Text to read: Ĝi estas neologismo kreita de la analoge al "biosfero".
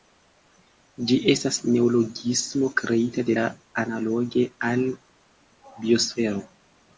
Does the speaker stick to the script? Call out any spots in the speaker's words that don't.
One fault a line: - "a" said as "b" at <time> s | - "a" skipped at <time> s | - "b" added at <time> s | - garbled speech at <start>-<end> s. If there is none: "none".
none